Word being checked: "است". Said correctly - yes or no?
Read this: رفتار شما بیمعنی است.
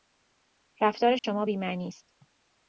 yes